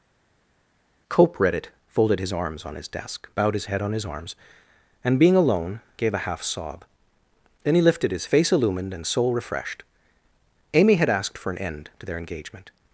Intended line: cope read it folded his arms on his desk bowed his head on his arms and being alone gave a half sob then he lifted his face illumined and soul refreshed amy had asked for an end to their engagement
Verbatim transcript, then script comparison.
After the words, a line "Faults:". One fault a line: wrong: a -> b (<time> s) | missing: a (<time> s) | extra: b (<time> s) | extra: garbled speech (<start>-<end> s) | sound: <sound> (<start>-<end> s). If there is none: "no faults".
cope read it folded his arms on his desk bowed his head on his arms and being alone gave a half sob then he lifted his face illumined and soul refreshed amy had asked for an end to their engagement
Faults:
no faults